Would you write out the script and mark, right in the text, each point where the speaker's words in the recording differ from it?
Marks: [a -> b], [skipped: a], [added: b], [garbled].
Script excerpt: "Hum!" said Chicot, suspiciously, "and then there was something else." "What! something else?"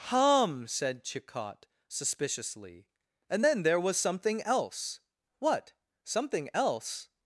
"Hum!" said Chicot, suspiciously, "and then there was something else." "What! something else?"